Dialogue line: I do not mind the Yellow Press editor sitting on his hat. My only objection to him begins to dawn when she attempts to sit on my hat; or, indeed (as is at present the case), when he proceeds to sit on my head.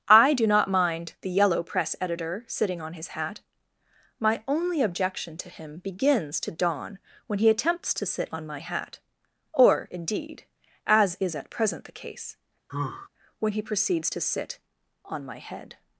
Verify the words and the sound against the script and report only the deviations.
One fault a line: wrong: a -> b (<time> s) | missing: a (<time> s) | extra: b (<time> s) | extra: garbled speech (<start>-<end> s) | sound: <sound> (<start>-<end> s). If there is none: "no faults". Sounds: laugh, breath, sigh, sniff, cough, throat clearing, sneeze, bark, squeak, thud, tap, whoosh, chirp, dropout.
wrong: she -> he (7.4 s)
sound: sigh (12.7-13.1 s)